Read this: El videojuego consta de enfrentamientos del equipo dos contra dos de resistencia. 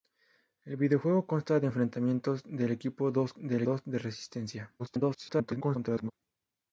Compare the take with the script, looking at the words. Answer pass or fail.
fail